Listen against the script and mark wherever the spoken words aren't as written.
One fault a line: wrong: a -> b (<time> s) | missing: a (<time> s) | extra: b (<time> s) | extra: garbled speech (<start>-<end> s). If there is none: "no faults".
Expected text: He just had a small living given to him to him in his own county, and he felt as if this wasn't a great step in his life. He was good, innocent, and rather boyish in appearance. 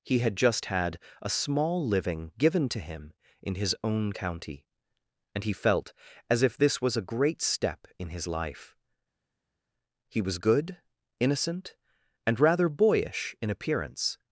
extra: had (0.2 s)
missing: to him (3.1 s)
wrong: wasn't -> was (6.8 s)